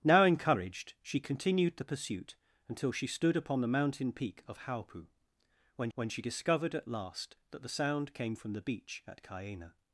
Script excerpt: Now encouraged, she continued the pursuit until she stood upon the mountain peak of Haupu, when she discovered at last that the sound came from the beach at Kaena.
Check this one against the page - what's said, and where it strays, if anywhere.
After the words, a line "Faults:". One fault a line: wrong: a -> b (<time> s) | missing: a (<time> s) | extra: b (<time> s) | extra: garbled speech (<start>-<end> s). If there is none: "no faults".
Now encouraged, she continued the pursuit until she stood upon the mountain peak of Haupu, when when she discovered at last that the sound came from the beach at Kaena.
Faults:
extra: when (5.9 s)